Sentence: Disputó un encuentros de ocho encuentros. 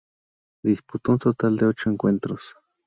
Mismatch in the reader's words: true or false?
true